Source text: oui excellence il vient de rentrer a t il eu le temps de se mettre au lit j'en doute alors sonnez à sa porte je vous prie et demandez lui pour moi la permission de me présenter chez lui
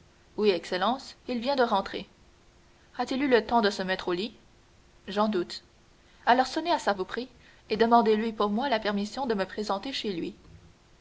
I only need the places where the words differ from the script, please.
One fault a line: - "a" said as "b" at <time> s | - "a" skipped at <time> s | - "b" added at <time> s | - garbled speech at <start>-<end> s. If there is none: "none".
- "porte je" skipped at 6.9 s